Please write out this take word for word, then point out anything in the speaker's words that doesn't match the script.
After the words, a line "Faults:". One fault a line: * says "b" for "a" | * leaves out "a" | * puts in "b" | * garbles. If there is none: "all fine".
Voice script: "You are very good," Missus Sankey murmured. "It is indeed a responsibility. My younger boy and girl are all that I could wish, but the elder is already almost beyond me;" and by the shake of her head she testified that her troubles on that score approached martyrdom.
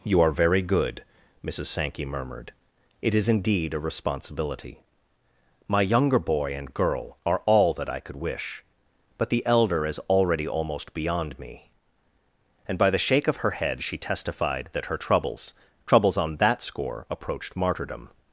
"You are very good," Missus Sankey murmured. "It is indeed a responsibility. My younger boy and girl are all that I could wish, but the elder is already almost beyond me;" and by the shake of her head she testified that her troubles troubles on that score approached martyrdom.
Faults:
* puts in "troubles"